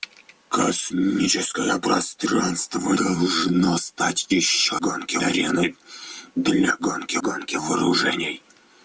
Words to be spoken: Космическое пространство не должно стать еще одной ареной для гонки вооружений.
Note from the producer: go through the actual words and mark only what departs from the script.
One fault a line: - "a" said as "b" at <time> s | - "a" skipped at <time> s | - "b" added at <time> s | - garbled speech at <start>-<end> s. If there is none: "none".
- "не" skipped at 3.0 s
- "одной" said as "гонки" at 4.8 s
- "гонки" added at 7.2 s